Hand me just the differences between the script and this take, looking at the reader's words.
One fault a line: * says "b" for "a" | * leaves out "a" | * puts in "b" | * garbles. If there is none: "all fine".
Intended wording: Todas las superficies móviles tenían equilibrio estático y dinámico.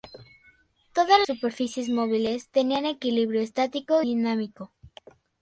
* leaves out "las"
* leaves out "y"